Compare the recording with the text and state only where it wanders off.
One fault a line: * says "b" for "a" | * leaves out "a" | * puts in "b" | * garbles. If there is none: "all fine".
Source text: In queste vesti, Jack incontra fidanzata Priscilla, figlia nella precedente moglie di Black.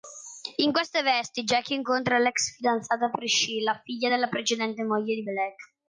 * puts in "l'ex"
* says "della" for "nella"